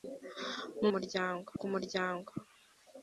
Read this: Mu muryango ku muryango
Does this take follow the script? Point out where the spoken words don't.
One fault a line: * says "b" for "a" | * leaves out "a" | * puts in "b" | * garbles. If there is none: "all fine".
all fine